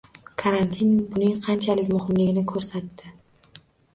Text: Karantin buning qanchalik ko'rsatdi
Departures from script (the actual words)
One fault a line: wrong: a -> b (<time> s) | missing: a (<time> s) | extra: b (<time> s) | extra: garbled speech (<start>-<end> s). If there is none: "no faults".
extra: muhimligini (2.0 s)